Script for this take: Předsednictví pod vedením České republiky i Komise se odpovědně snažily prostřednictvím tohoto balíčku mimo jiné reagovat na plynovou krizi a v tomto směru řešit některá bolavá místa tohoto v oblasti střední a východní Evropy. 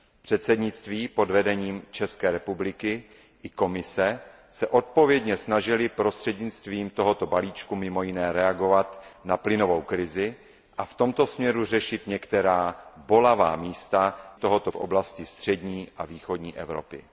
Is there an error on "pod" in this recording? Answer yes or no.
no